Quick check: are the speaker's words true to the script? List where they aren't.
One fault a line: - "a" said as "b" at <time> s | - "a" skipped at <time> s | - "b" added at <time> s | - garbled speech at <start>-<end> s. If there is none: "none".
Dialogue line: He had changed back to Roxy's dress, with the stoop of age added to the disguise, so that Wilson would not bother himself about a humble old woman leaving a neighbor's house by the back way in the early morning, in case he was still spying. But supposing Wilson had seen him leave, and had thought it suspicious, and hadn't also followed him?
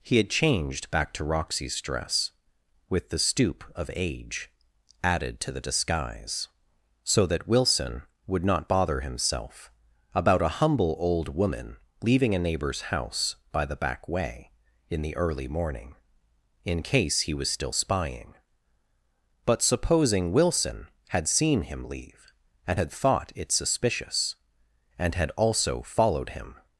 - "hadn't" said as "had" at 25.2 s